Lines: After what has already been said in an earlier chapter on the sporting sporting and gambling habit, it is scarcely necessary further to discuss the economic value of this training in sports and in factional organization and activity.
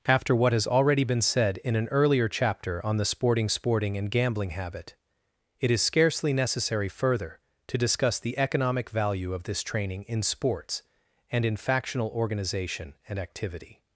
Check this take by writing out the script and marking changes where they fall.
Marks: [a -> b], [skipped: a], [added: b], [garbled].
After what has already been said in an earlier chapter on the sporting sporting and gambling habit, it is scarcely necessary further to discuss the economic value of this training in sports and in factional organization and activity.